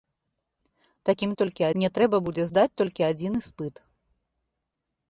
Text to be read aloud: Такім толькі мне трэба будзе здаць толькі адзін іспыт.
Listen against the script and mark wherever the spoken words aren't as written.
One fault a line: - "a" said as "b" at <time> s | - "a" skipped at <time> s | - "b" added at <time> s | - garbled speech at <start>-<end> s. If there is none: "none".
none